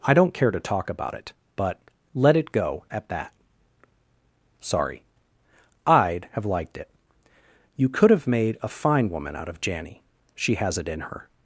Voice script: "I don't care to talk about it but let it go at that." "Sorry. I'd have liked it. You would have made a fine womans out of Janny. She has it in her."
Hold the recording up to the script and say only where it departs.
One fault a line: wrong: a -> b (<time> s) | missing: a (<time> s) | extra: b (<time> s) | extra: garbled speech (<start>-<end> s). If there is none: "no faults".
wrong: would -> could (7.9 s)
wrong: womans -> woman (9.1 s)